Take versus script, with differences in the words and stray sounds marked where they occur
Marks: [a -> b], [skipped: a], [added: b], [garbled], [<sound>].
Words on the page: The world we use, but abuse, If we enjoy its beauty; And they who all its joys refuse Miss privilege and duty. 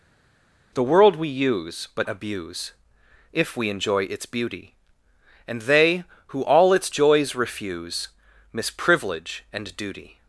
The world we use, but abuse, If we enjoy its beauty; And they who all its joys refuse Miss privilege and duty.